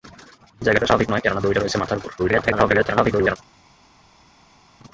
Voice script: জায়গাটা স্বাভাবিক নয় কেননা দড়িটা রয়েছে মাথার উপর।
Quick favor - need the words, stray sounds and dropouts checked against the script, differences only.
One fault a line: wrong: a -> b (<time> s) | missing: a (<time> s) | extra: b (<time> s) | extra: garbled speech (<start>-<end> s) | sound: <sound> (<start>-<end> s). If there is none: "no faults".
extra: garbled speech (2.2-3.4 s)